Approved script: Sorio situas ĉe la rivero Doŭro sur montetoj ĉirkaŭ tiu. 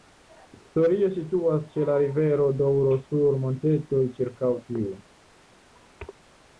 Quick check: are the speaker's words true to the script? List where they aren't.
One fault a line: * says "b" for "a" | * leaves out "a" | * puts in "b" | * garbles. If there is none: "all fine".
all fine